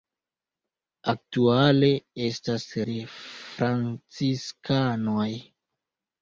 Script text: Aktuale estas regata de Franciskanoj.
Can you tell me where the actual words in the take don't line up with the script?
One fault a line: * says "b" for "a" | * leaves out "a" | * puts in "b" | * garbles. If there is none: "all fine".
* leaves out "regata"